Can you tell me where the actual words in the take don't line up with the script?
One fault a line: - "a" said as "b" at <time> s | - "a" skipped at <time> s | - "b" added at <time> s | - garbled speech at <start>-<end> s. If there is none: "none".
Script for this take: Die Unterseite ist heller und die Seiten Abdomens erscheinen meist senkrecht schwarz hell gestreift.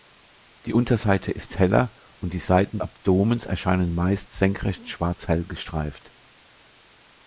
none